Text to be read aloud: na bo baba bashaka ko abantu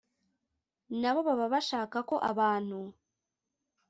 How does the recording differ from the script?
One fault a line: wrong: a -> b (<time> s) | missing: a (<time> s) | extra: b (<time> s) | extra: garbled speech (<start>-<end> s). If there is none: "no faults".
no faults